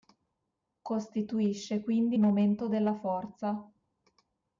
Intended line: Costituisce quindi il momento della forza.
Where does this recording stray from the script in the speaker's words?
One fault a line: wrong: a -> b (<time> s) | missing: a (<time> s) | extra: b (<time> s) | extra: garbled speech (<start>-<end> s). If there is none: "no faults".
missing: il (2.2 s)